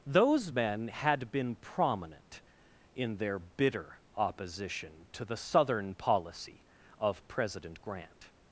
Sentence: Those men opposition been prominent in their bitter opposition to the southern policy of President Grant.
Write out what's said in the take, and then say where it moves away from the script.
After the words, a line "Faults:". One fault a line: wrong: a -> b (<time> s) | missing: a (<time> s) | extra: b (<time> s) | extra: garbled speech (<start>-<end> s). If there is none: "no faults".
Those men had been prominent in their bitter opposition to the southern policy of President Grant.
Faults:
wrong: opposition -> had (0.9 s)